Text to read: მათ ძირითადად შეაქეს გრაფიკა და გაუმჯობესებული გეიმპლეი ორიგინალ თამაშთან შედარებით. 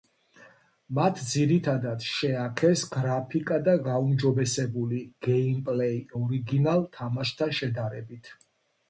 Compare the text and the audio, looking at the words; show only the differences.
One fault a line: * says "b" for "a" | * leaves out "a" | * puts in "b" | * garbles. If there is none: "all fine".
all fine